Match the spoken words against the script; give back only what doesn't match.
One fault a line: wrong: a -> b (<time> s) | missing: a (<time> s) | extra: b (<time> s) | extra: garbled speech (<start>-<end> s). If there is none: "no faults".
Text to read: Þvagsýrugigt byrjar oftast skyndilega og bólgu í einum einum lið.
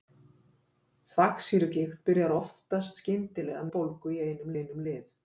no faults